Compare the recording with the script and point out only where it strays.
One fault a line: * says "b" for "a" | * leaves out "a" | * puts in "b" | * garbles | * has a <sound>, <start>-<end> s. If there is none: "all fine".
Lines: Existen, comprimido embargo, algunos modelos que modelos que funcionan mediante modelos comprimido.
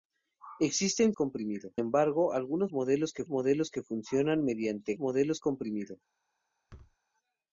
* has a thud, 6.7-7.0 s